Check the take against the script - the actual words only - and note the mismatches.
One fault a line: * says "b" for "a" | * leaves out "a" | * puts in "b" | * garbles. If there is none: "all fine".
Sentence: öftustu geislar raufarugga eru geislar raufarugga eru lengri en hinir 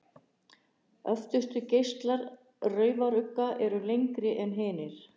* leaves out "geislar raufarugga eru"